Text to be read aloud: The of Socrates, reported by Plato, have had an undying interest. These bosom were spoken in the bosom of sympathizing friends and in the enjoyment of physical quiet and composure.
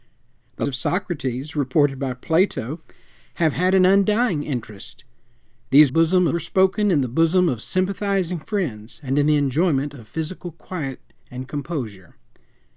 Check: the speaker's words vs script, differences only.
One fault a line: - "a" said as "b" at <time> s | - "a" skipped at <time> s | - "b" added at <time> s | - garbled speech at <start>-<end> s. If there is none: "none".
none